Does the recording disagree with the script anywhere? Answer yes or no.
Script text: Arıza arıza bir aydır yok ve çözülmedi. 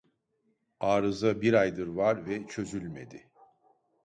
yes